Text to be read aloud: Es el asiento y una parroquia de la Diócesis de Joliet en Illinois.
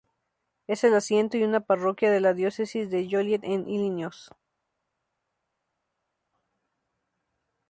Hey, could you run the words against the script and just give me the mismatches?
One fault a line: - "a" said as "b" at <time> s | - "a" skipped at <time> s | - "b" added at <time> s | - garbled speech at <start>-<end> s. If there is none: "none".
none